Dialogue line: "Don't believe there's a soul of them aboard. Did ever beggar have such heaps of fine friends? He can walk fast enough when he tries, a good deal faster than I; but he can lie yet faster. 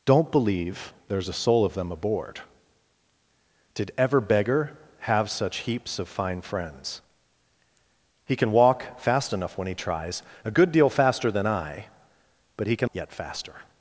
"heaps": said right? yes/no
yes